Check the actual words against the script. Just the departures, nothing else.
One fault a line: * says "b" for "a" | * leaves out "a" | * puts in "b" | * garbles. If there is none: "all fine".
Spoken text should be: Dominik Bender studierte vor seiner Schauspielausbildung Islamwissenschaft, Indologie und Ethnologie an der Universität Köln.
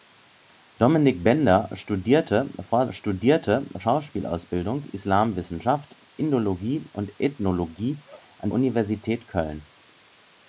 * says "studierte" for "seiner"
* leaves out "der"